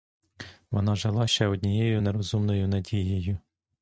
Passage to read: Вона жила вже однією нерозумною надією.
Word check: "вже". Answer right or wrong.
wrong